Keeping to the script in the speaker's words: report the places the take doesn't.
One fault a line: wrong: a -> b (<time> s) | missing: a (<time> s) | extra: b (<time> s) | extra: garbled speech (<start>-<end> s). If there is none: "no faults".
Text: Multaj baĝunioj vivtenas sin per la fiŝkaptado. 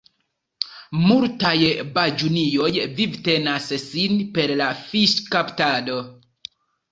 no faults